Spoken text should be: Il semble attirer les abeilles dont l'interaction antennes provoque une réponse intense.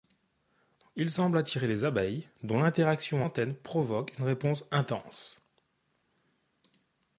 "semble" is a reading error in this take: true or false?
false